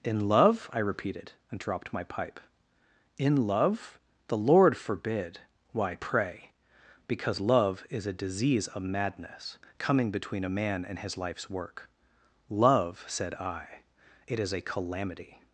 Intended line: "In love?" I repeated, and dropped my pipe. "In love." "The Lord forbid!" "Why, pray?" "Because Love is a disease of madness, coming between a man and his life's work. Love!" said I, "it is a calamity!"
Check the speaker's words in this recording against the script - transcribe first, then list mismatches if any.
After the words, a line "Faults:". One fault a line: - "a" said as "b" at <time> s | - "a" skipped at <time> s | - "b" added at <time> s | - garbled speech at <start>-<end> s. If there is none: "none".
"In love?" I repeated, and dropped my pipe. "In love." "The Lord forbid!" "Why, pray?" "Because Love is a disease of madness, coming between a man and his life's work. Love!" said I, "it is a calamity!"
Faults:
none